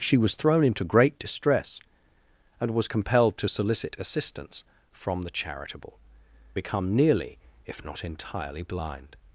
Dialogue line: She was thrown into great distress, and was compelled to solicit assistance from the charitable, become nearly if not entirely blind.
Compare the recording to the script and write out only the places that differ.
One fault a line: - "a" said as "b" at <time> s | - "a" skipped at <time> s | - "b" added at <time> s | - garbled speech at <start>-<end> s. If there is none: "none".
none